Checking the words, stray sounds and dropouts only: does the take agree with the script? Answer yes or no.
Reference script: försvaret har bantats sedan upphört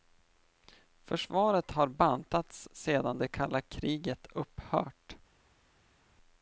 no